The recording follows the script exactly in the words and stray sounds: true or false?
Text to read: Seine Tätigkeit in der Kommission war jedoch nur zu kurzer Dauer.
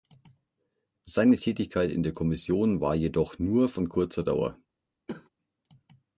false